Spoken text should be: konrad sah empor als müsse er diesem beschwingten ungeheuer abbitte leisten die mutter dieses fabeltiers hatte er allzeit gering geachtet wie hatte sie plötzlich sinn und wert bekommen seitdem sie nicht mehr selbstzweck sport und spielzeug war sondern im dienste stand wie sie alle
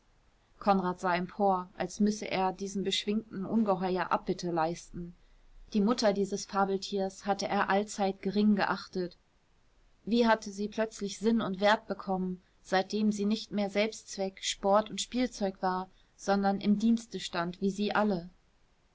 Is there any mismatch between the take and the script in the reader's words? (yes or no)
no